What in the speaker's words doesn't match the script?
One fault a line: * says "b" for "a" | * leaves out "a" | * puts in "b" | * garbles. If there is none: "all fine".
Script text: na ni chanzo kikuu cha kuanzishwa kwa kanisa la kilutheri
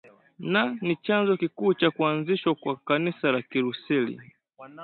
all fine